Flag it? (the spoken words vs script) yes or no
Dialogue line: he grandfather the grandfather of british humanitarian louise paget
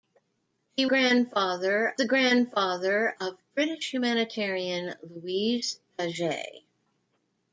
no